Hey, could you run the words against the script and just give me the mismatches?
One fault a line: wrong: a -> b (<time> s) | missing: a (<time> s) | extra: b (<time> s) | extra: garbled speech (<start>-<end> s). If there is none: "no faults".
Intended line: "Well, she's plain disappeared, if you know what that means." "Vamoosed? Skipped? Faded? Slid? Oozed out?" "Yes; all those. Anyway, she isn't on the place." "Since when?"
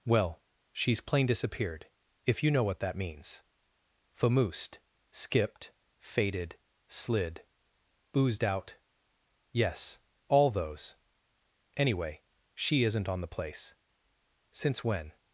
no faults